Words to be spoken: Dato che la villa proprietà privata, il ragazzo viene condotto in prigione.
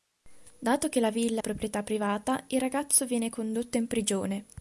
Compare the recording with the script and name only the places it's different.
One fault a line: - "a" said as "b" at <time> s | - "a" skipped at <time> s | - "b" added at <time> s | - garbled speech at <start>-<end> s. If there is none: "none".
none